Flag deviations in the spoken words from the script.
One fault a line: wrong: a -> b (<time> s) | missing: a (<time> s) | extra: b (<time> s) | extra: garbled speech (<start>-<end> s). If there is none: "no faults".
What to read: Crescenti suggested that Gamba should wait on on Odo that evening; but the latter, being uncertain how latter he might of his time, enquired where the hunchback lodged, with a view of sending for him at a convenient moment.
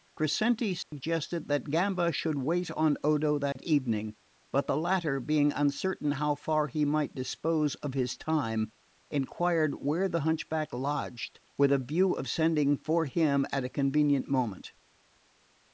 missing: on (3.0 s)
wrong: latter -> far (6.4 s)
extra: dispose (7.1 s)